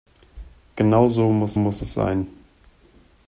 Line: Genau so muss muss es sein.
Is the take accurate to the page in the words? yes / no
yes